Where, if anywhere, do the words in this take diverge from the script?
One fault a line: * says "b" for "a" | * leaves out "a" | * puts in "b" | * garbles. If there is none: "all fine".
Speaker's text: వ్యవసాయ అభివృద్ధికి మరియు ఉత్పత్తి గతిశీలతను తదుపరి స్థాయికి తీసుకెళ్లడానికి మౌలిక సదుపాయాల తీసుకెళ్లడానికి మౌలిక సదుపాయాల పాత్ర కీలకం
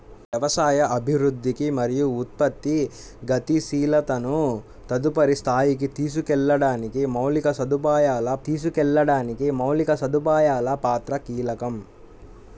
all fine